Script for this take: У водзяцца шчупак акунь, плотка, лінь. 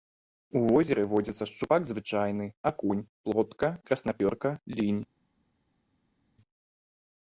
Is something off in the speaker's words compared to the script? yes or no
yes